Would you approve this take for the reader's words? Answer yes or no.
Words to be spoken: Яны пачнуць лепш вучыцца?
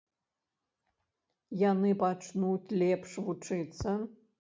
yes